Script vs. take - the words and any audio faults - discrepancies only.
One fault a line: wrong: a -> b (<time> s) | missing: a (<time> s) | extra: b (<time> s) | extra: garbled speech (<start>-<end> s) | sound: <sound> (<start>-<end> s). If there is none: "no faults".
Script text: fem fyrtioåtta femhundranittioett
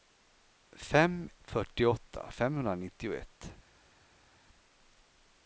no faults